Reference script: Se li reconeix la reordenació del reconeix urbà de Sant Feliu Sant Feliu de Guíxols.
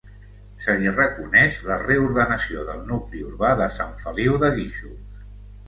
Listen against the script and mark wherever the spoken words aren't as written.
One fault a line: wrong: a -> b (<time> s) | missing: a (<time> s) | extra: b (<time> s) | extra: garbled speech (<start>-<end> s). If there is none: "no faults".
wrong: reconeix -> nucli (2.9 s)
missing: Sant Feliu (4.4 s)